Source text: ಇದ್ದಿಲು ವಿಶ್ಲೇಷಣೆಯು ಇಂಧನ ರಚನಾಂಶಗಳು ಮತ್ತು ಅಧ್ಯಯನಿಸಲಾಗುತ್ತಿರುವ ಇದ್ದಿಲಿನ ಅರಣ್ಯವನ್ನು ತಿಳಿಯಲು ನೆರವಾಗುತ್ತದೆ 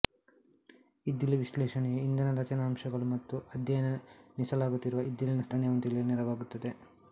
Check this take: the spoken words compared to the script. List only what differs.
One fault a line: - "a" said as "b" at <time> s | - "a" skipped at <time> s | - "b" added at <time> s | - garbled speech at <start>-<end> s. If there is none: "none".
none